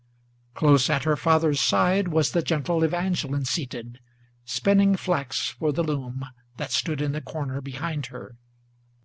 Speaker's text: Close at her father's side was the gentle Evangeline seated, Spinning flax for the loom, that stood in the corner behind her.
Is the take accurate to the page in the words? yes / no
yes